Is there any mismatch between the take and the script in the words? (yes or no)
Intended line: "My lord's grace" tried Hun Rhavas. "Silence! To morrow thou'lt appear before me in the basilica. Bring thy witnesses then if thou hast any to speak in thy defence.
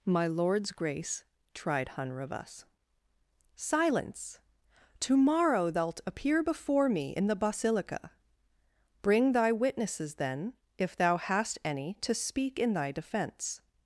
no